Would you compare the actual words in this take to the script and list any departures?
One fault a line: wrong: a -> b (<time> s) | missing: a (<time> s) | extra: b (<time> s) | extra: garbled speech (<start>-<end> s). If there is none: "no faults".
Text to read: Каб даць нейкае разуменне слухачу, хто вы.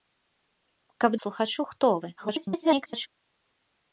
missing: даць нейкае разуменне (1.1 s)
extra: garbled speech (2.2-3.1 s)